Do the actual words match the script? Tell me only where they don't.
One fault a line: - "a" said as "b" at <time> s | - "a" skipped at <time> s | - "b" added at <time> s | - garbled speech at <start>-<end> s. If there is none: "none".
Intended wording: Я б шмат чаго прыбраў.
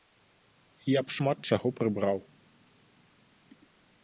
none